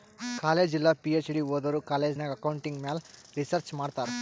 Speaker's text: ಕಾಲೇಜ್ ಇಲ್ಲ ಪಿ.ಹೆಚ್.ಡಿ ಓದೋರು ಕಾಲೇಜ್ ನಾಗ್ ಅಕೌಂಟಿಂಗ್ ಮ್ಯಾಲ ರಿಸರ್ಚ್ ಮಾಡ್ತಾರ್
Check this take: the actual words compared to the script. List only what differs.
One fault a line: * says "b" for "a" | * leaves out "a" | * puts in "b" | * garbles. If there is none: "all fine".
all fine